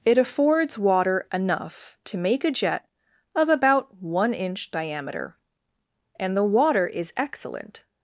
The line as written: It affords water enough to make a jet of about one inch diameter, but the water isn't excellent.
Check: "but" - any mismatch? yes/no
yes